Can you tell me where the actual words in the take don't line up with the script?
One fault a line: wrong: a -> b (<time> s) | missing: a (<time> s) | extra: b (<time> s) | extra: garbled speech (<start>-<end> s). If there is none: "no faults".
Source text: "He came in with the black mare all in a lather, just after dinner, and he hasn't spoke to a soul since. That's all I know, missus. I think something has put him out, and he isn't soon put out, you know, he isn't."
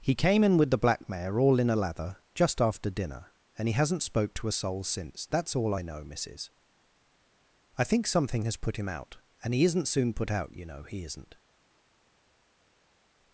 no faults